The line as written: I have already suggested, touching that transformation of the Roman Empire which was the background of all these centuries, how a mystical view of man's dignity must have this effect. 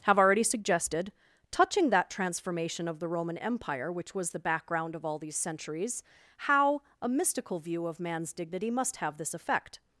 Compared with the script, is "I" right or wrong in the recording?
wrong